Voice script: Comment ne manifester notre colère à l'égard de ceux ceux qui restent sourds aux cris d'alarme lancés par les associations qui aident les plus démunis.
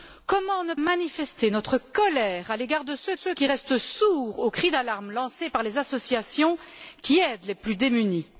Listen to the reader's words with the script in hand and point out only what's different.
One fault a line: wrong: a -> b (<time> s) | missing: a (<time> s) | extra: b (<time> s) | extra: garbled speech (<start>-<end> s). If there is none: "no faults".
no faults